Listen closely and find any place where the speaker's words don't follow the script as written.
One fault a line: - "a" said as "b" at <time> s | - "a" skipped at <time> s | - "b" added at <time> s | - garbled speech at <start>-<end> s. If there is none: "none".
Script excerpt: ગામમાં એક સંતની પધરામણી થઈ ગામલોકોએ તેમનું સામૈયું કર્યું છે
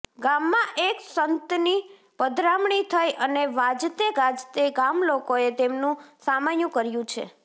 - "અને વાજતે ગાજતે" added at 3.2 s